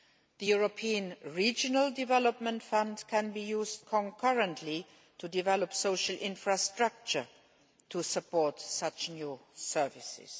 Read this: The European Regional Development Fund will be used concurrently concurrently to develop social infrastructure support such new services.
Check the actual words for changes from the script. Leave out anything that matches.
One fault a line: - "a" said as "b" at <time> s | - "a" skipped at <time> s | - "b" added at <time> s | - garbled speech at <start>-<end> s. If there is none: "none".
- "will" said as "can" at 3.1 s
- "concurrently" skipped at 4.8 s
- "to" added at 7.9 s